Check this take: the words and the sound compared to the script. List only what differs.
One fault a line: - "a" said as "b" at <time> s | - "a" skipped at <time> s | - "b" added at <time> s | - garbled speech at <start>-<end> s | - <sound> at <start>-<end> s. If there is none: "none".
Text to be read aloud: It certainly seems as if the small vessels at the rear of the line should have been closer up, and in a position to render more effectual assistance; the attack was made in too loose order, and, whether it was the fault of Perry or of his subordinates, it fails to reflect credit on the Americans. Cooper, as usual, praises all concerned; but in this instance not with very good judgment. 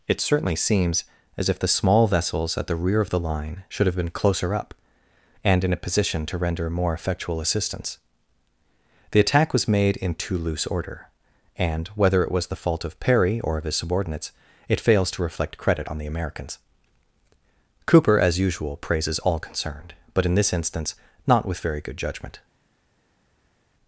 none